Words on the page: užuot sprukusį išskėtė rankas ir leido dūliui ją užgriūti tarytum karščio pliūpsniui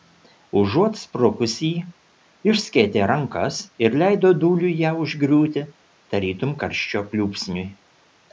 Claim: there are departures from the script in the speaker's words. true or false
false